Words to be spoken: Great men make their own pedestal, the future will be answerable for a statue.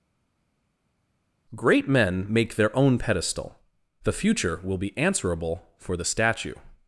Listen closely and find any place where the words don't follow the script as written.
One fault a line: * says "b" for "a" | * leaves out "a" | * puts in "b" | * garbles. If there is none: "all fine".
* says "the" for "a"